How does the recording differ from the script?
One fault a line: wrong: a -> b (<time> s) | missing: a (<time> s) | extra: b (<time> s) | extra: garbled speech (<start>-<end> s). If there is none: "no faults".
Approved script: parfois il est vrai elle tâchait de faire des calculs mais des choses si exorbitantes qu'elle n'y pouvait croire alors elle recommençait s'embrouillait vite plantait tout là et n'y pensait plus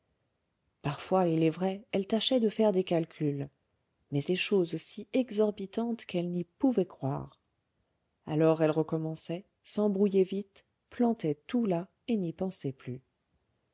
no faults